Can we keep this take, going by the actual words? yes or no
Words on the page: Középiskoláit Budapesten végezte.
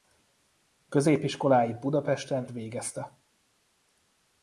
yes